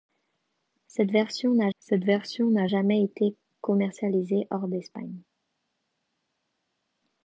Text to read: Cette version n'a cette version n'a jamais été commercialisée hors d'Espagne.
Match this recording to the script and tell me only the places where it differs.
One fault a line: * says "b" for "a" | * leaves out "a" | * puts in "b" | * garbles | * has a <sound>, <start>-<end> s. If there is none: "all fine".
all fine